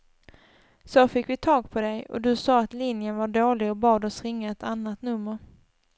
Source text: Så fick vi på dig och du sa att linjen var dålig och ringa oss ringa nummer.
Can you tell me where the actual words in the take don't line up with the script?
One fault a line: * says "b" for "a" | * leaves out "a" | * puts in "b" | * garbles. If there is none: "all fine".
* puts in "tag"
* says "bad" for "ringa"
* puts in "ett annat"